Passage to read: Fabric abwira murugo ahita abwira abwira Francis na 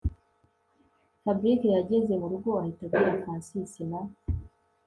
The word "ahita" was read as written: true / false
true